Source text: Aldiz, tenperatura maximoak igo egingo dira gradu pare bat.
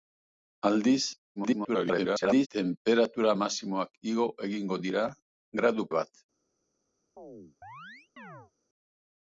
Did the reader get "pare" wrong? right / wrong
wrong